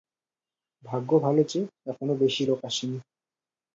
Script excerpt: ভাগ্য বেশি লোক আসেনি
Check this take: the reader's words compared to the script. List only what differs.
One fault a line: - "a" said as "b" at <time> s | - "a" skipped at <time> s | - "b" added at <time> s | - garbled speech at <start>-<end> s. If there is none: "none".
- "ভালো যে এখনো" added at 1.2 s